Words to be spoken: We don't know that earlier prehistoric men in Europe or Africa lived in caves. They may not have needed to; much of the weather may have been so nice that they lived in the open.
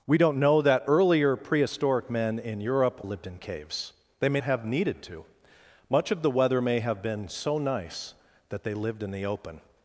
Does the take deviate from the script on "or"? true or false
true